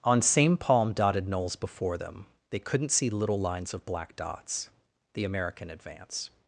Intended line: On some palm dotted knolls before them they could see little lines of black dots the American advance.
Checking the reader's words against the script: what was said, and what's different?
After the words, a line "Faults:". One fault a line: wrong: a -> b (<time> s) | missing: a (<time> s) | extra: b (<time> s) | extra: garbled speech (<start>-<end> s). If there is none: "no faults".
On same palm dotted knolls before them they couldn't see little lines of black dots the American advance.
Faults:
wrong: some -> same (0.2 s)
wrong: could -> couldn't (2.6 s)